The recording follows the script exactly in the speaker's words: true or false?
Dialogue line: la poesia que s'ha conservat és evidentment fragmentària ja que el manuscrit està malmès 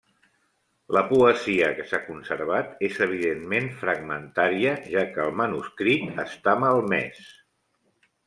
true